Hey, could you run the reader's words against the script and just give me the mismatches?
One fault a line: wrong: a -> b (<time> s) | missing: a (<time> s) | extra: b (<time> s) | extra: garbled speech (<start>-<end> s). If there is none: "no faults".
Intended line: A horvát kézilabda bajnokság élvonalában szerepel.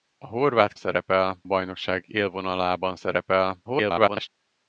wrong: kézilabda -> szerepel (0.7 s)
extra: garbled speech (3.6-4.3 s)